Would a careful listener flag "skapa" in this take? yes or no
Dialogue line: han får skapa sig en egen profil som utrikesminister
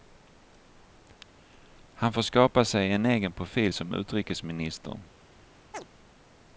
no